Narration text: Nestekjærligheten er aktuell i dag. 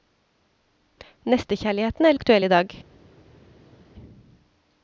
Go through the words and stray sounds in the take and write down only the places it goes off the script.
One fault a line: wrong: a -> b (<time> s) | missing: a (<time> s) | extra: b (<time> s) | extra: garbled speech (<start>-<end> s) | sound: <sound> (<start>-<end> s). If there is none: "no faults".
no faults